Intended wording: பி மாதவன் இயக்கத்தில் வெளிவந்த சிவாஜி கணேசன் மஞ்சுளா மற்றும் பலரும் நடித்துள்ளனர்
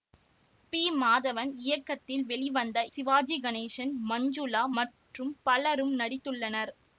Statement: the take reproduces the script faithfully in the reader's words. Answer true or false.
true